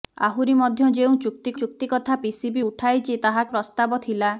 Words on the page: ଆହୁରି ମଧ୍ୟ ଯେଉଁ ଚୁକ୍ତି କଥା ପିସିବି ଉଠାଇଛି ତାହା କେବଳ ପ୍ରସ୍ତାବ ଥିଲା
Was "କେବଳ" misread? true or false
true